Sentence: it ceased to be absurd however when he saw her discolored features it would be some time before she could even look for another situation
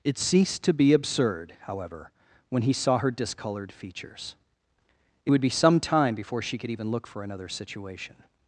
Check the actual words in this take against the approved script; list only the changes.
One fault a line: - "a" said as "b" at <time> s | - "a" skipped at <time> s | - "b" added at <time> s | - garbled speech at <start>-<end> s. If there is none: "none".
none